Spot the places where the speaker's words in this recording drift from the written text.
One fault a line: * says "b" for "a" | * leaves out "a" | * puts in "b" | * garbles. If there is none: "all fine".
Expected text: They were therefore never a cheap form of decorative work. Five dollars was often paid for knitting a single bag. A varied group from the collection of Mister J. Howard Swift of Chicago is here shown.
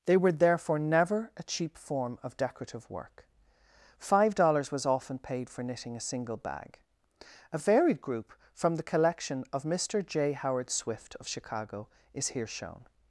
all fine